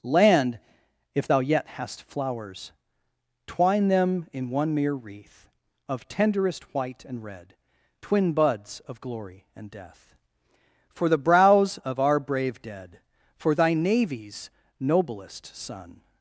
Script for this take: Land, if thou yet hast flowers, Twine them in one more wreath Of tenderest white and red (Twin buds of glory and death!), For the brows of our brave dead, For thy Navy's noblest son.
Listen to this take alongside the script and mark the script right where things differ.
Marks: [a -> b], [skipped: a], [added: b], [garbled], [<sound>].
Land, if thou yet hast flowers, Twine them in one [more -> mere] wreath Of tenderest white and red (Twin buds of glory and death!), For the brows of our brave dead, For thy Navy's noblest son.